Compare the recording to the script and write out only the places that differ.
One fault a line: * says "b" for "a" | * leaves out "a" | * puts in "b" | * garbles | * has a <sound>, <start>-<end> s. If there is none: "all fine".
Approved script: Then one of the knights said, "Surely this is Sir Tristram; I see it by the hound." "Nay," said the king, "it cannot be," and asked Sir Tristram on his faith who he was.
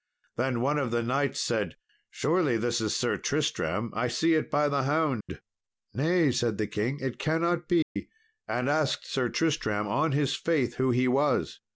* has a dropout, 5.2-5.3 s
* has a dropout, 7.8-8.0 s